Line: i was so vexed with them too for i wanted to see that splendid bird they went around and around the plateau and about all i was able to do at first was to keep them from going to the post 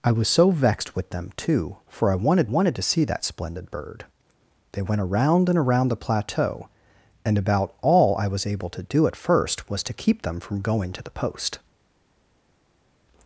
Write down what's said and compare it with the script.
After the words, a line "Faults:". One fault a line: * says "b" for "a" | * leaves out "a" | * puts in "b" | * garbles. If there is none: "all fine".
i was so vexed with them too for i wanted wanted to see that splendid bird they went around and around the plateau and about all i was able to do at first was to keep them from going to the post
Faults:
* puts in "wanted"